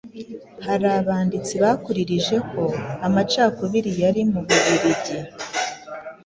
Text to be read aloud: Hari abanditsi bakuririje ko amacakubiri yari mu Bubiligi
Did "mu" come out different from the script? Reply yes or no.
no